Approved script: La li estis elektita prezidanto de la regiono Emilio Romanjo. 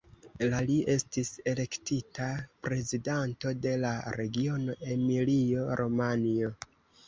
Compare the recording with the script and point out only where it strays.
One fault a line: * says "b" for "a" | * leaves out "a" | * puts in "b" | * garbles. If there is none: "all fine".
all fine